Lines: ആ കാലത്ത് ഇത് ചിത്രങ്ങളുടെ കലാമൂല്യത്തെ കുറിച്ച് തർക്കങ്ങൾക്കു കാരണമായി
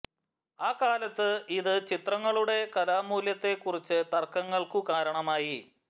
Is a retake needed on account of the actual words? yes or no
no